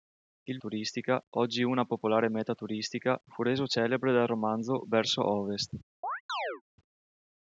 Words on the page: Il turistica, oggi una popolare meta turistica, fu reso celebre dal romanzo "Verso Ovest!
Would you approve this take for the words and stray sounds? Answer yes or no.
no